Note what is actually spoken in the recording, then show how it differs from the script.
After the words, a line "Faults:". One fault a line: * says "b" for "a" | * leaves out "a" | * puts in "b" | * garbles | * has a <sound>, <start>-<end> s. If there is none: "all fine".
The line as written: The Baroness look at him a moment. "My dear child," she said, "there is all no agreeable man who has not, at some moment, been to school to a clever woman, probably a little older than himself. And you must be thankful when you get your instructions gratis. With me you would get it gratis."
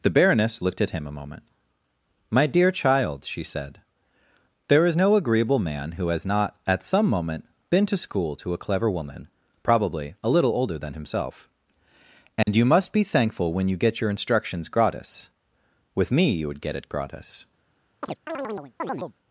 The Baroness looked at him a moment. "My dear child," she said, "there is no agreeable man who has not, at some moment, been to school to a clever woman, probably a little older than himself. And you must be thankful when you get your instructions gratis. With me you would get it gratis."
Faults:
* says "looked" for "look"
* leaves out "all"
* has a dropout, 12.4-12.5 s
* has a chirp, 18.0-19.1 s